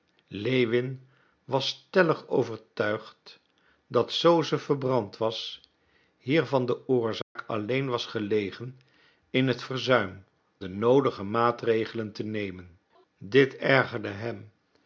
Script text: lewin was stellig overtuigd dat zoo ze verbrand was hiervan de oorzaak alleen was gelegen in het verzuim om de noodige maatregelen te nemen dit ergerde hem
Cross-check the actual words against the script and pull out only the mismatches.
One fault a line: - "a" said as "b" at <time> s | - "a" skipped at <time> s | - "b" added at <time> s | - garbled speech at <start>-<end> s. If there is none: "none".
- "om" skipped at 10.2 s